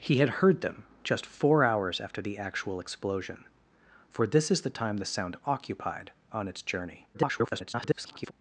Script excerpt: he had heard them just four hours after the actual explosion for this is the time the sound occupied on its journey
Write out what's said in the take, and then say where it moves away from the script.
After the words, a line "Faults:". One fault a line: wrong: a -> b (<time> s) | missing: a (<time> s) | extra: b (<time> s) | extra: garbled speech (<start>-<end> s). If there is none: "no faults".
he had heard them just four hours after the actual explosion for this is the time the sound occupied on its journey [garbled]
Faults:
extra: garbled speech (7.1-8.3 s)